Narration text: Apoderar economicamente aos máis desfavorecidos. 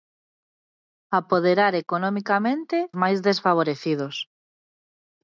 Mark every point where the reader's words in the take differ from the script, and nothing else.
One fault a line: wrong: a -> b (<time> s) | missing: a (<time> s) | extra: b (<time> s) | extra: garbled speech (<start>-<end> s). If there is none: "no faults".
missing: aos (2.8 s)